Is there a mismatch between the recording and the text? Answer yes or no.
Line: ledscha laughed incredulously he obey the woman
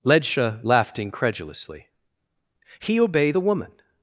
no